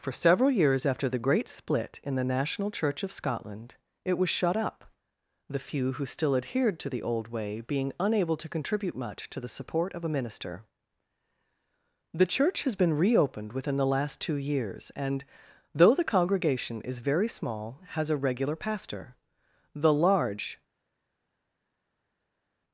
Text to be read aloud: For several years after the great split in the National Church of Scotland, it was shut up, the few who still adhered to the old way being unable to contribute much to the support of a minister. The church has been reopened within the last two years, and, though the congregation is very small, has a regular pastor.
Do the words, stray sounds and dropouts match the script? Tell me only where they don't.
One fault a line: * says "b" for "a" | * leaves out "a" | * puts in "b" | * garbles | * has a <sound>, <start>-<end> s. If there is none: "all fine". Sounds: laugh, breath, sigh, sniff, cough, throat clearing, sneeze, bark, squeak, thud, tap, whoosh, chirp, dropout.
* puts in "The large"